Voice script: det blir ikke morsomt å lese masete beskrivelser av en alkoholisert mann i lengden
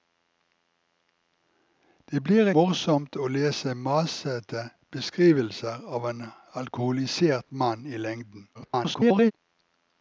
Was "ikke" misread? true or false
true